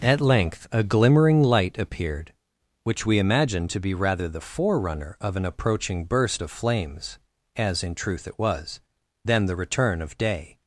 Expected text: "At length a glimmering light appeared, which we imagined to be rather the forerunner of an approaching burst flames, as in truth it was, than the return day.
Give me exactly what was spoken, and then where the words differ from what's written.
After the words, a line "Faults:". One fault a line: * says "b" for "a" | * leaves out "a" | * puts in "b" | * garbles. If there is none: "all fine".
"At length a glimmering light appeared, which we imagined to be rather the forerunner of an approaching burst of flames, as in truth it was, than the return of day.
Faults:
* puts in "of"
* puts in "of"